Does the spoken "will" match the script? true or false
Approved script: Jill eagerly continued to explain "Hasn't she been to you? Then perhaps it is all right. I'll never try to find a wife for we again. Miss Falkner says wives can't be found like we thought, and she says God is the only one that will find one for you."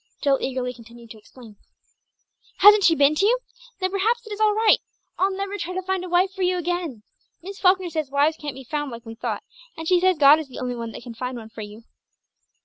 false